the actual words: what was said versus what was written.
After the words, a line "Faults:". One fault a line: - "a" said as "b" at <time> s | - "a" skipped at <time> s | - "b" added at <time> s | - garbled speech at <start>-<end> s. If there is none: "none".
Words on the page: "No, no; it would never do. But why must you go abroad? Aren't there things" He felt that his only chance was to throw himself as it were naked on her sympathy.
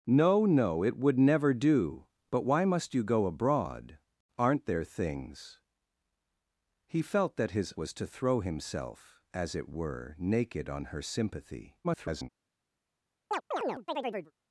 "No, no; it would never do. But why must you go abroad? Aren't there things" He felt that his was to throw himself as it were naked on her sympathy. [garbled]
Faults:
- "only chance" skipped at 7.7 s
- garbled speech at 11.8-12.3 s